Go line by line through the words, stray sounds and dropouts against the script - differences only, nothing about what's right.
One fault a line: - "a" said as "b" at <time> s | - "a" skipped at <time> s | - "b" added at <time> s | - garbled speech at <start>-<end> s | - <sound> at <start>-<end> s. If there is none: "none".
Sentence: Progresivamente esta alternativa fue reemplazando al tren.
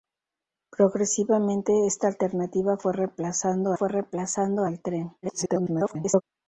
- "fue reemplazando" added at 3.7 s
- garbled speech at 5.2-6.2 s